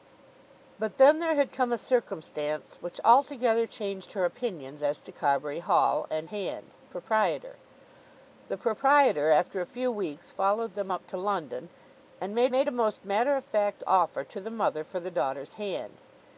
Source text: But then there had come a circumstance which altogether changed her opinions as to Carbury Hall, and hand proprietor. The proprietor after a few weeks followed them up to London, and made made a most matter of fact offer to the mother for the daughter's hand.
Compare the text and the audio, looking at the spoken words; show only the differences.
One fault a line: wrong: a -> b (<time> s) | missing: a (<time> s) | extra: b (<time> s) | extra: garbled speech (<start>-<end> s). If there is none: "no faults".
no faults